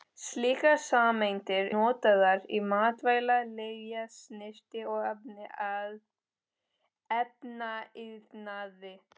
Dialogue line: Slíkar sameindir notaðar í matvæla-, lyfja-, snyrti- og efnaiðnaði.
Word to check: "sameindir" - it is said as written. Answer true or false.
true